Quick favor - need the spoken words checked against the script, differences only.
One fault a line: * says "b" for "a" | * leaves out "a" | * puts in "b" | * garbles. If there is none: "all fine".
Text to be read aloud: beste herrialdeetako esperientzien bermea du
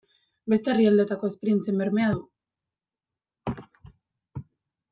all fine